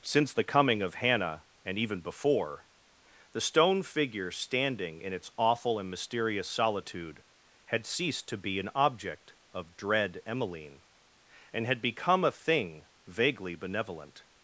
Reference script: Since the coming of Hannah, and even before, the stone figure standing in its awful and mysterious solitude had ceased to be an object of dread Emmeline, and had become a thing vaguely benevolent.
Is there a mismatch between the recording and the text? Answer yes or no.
no